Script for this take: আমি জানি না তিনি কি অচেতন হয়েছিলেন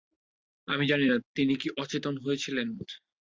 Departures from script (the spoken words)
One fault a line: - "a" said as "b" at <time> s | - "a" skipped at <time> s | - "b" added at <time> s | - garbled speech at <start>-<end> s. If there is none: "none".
none